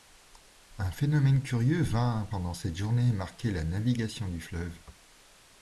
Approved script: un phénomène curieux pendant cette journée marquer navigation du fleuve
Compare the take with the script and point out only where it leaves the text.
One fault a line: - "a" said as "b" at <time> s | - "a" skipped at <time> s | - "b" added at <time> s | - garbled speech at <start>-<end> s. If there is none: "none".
- "vint" added at 1.8 s
- "la" added at 3.5 s